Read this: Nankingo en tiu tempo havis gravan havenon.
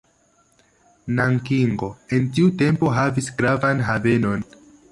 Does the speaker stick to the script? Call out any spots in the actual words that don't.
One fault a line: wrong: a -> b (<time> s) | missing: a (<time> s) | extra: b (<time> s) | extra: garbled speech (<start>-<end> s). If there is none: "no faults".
no faults